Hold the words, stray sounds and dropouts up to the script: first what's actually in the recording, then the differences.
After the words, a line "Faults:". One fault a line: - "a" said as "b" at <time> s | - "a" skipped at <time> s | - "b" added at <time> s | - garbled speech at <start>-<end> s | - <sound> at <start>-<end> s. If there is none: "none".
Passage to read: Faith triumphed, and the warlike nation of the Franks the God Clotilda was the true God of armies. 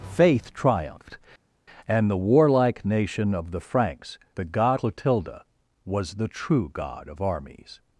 Faith triumphed, and the warlike nation of the Franks the God Clotilda was the true God of armies.
Faults:
none